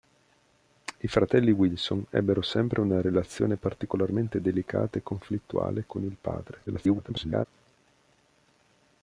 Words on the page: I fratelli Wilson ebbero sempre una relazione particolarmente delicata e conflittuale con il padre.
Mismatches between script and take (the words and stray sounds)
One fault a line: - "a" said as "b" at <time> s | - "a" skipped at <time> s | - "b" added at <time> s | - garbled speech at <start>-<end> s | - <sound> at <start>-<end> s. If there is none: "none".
- garbled speech at 6.7-7.5 s